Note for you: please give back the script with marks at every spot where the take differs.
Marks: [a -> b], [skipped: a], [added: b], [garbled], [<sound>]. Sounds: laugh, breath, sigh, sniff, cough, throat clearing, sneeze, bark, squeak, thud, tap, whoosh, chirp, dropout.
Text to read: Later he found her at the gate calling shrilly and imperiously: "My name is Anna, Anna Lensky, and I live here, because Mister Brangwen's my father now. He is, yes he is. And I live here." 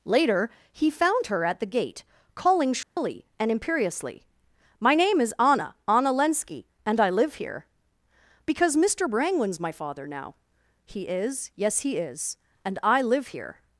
Later he found her at the gate calling shrilly [dropout] and imperiously: "My name is Anna, Anna Lensky, and I live here, because Mister Brangwen's my father now. He is, yes he is. And I live here."